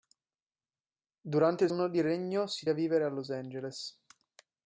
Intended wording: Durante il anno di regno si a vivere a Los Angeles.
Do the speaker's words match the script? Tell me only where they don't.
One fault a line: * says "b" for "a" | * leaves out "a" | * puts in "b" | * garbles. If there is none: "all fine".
all fine